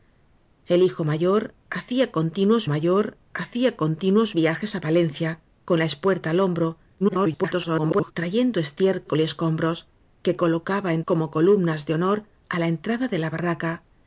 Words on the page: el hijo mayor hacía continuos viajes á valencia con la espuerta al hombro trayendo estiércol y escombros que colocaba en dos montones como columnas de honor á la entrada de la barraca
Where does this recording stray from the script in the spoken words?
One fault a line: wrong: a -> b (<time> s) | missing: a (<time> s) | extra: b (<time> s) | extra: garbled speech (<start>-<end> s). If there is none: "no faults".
extra: mayor hacía continuos (2.7 s)
extra: garbled speech (7.0-8.1 s)
missing: dos montones (11.0 s)